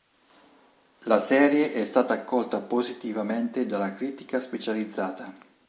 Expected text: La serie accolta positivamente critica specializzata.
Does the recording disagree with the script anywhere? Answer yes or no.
yes